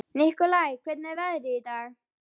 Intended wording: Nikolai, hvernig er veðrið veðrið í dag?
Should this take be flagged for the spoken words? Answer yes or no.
yes